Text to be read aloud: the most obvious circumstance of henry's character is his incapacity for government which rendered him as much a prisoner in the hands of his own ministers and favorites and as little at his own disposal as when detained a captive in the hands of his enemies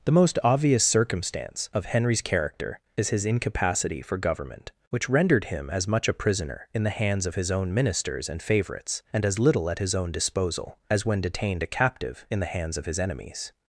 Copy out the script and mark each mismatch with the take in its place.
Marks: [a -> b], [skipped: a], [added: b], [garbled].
the most obvious circumstance of henry's character is his incapacity for government which rendered him as much a prisoner in the hands of his own ministers and favorites and as little at his own disposal as when detained a captive in the hands of his enemies